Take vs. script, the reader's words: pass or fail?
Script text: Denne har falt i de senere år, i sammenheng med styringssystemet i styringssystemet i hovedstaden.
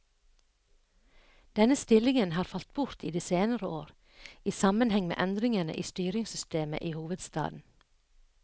fail